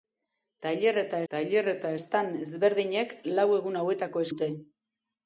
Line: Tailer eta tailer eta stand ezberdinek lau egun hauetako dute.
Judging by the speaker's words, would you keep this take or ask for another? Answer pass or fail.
pass